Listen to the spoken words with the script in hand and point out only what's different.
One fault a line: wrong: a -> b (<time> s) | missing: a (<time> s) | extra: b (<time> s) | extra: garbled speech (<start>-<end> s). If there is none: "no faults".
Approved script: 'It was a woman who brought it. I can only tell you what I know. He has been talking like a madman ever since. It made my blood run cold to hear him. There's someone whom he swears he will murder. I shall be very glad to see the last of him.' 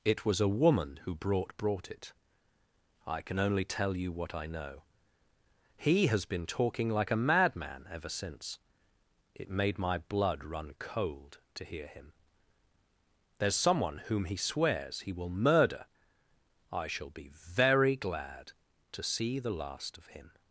extra: brought (1.6 s)